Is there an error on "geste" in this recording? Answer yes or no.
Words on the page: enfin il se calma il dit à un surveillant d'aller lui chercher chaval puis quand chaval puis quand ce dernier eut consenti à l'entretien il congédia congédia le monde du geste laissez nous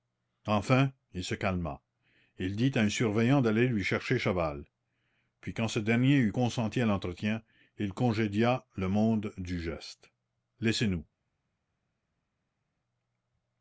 no